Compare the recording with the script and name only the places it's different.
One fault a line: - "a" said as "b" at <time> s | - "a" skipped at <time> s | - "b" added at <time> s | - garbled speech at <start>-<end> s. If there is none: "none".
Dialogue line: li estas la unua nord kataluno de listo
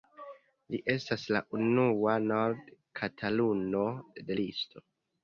none